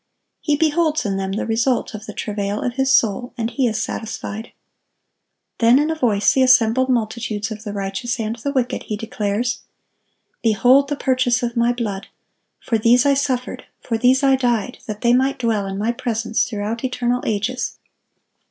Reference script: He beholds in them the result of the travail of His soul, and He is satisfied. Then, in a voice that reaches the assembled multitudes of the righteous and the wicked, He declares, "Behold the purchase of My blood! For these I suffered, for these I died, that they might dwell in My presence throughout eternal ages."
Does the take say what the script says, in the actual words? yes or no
no